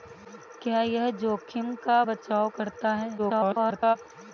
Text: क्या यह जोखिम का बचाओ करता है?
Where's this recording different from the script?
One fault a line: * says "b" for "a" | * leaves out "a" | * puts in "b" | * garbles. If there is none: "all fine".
* garbles